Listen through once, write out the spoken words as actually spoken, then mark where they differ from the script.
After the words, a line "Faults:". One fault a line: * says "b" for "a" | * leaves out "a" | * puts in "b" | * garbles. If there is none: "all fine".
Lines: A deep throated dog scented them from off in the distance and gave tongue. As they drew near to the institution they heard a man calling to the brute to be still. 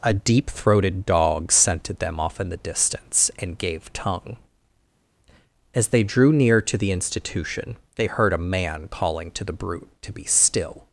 A deep throated dog scented them off in the distance and gave tongue. As they drew near to the institution they heard a man calling to the brute to be still.
Faults:
* leaves out "from"